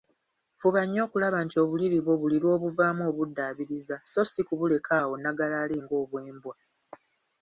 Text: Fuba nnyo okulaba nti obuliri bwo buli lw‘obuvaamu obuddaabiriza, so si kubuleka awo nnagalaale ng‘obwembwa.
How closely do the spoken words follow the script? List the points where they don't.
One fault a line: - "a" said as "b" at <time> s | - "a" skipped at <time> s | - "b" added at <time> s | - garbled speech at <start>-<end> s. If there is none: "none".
none